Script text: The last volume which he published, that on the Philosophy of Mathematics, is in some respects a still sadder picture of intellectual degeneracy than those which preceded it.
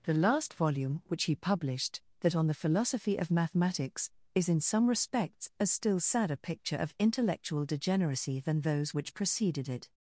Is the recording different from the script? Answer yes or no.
no